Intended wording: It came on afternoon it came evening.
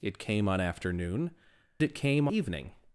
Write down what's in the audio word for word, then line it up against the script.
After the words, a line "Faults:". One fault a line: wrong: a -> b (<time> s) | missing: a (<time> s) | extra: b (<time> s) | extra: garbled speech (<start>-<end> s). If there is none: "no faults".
It came on afternoon it came evening.
Faults:
no faults